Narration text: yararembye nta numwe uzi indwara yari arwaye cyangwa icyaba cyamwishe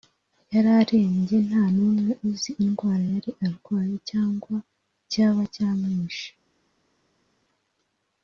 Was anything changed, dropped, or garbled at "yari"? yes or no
no